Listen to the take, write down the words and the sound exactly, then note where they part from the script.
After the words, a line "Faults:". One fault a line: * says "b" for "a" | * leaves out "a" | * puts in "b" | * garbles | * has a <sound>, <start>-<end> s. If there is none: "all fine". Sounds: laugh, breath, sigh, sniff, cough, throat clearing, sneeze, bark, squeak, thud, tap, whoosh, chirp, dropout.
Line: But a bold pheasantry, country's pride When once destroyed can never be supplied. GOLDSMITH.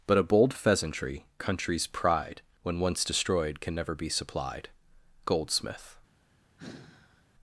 But a bold pheasantry, country's pride When once destroyed can never be supplied. GOLDSMITH.
Faults:
* has a sigh, 6.6-7.3 s